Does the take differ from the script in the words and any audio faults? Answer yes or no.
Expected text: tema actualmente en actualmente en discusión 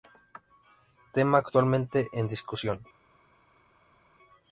yes